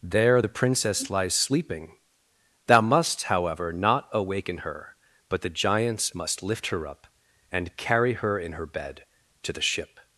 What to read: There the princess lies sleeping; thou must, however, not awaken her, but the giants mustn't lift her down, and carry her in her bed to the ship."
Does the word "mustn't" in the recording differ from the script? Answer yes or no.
yes